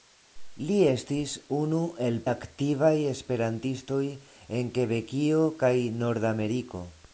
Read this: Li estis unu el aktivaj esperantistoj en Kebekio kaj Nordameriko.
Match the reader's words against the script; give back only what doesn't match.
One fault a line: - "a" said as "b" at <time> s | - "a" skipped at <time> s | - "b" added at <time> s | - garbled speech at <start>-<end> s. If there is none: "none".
none